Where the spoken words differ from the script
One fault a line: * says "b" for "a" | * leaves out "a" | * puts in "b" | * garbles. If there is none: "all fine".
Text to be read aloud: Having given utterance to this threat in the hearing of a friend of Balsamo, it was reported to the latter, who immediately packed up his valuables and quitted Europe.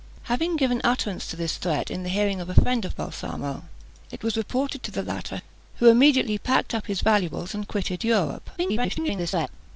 * garbles